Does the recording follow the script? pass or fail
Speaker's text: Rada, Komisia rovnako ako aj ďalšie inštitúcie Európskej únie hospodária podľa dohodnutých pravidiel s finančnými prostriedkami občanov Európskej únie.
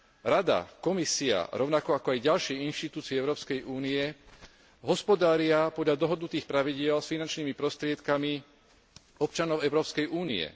pass